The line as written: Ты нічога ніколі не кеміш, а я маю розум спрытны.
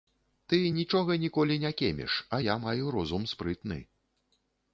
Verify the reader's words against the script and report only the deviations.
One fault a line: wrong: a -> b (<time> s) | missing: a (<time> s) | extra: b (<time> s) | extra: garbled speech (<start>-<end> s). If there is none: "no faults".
no faults